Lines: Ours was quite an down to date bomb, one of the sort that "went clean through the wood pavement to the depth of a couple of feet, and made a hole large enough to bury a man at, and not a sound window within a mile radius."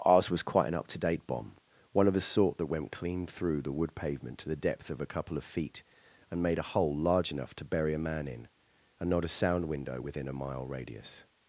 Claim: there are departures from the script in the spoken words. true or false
true